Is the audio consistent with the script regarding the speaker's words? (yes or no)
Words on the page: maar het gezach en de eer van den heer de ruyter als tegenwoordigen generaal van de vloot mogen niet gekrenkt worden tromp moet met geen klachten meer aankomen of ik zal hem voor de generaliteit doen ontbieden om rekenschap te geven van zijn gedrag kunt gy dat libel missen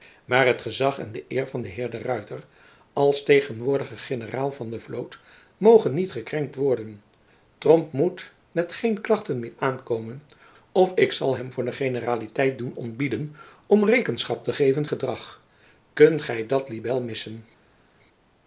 no